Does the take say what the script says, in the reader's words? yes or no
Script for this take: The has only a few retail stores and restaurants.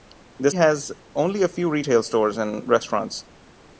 yes